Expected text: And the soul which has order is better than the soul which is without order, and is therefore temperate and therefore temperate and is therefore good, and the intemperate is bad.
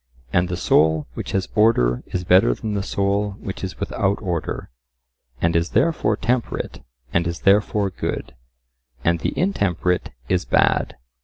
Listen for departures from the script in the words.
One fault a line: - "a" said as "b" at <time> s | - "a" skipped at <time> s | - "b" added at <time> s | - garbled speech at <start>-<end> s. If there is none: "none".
- "therefore temperate and" skipped at 7.3 s